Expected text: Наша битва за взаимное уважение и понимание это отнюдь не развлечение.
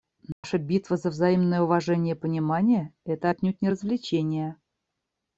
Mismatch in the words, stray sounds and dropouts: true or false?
true